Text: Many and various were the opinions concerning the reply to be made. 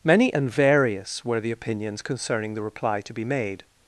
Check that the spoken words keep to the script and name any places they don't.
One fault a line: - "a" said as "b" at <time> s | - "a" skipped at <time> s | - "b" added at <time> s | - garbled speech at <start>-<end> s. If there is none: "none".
none